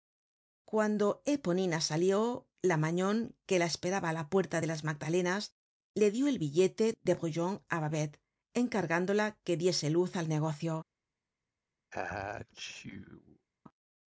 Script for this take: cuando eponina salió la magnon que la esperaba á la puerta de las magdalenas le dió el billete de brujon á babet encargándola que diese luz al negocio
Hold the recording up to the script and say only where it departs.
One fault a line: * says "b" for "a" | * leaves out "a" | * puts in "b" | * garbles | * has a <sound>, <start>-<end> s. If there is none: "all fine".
* has a sneeze, 11.9-13.5 s